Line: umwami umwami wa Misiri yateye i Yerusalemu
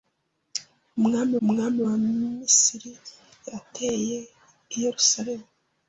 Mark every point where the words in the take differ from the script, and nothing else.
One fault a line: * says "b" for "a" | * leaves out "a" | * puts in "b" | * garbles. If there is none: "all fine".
all fine